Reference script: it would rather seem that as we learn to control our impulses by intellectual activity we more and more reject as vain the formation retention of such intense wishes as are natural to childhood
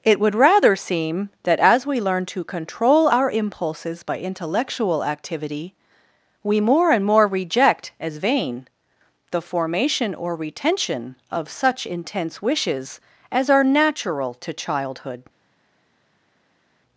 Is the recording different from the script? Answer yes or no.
yes